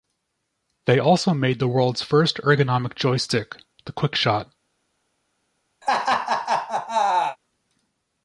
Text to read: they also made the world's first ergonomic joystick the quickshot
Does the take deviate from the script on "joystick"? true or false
false